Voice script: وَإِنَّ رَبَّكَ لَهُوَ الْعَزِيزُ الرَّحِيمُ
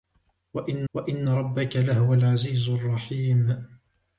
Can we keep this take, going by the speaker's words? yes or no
no